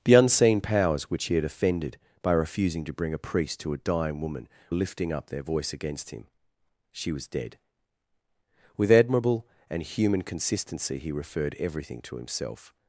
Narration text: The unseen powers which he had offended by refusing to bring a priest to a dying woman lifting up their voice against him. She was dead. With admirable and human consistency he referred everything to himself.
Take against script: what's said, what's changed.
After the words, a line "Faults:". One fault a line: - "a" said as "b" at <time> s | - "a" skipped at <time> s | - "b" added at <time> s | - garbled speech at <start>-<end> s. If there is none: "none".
The unseen powers which he had offended by refusing to bring a priest to a dying woman lifting up their voice against him. She was dead. With admirable and human consistency he referred everything to himself.
Faults:
none